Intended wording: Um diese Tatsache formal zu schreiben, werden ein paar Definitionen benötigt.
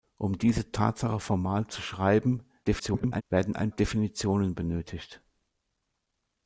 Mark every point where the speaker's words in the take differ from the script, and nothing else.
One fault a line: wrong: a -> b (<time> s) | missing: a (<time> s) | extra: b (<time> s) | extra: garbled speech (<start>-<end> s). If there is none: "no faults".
extra: garbled speech (2.6-3.2 s)
missing: paar (3.7 s)